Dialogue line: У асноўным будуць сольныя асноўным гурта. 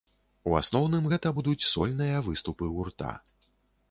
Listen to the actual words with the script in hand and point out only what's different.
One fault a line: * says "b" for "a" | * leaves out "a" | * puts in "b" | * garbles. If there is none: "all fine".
* puts in "гэта"
* says "выступы" for "асноўным"